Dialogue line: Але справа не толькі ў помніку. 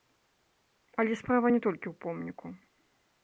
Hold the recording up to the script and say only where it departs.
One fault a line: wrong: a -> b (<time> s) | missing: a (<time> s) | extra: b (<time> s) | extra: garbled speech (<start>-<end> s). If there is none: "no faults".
no faults